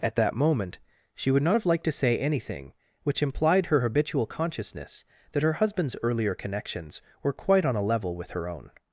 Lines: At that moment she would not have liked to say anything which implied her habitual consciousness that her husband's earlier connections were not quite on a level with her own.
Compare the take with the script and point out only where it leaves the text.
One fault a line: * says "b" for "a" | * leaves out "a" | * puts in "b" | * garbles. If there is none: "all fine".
* leaves out "not"